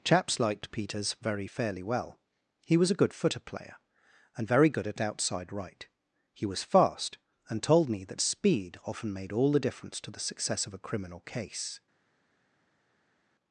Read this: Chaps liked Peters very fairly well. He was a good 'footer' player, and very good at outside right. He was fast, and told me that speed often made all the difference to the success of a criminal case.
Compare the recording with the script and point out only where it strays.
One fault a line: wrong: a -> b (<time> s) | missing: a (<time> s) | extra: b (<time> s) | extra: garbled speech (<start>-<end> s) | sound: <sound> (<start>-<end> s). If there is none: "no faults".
no faults